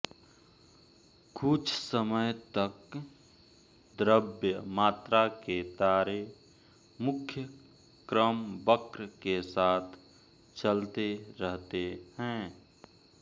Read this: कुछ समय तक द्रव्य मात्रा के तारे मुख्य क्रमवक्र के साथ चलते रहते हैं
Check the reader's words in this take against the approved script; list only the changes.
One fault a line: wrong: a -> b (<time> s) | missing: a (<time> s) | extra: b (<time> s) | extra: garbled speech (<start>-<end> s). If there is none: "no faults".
no faults